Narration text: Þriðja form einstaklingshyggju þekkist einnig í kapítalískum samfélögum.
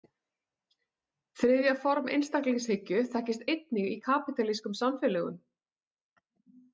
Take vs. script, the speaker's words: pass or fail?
pass